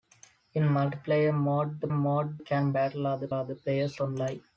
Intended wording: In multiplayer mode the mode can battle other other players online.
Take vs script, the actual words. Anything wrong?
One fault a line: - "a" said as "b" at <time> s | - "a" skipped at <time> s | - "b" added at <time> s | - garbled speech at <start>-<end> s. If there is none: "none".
none